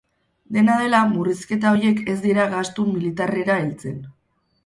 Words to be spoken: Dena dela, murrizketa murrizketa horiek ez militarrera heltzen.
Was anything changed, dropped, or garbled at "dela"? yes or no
no